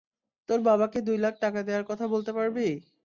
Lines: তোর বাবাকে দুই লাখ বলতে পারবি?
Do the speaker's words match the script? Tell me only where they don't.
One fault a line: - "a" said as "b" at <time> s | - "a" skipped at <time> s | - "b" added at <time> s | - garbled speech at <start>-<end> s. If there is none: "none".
- "টাকা দেয়ার কথা" added at 1.4 s